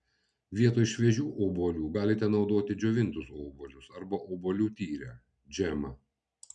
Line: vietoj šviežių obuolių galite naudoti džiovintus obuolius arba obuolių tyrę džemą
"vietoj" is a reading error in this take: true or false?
false